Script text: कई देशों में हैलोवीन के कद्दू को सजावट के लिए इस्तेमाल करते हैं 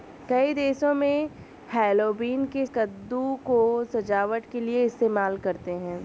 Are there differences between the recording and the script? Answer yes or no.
no